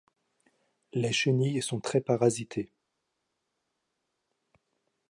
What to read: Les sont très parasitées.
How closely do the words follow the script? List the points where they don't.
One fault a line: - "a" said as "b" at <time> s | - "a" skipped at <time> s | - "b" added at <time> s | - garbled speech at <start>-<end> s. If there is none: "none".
- "chenilles" added at 1.1 s